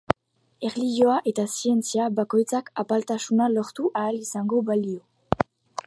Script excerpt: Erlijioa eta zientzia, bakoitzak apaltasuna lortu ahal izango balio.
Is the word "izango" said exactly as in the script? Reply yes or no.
yes